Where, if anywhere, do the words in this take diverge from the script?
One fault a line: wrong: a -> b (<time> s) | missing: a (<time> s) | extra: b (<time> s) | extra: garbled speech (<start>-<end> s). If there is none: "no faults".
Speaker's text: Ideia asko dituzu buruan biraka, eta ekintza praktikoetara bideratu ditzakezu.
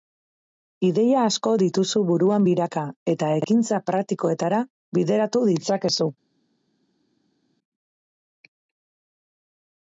no faults